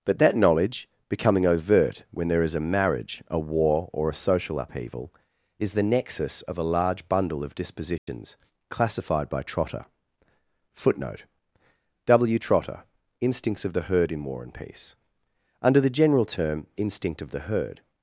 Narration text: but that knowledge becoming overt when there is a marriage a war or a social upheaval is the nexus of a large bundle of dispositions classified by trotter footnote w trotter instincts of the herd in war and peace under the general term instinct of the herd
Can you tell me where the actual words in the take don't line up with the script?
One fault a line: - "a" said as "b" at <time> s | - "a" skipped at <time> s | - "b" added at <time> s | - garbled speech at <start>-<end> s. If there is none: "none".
none